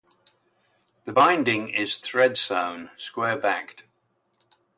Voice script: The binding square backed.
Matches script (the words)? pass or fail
fail